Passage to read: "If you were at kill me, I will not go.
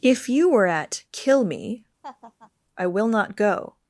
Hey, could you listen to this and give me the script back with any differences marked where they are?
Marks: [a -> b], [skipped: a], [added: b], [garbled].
"If you were at kill me, I will not go.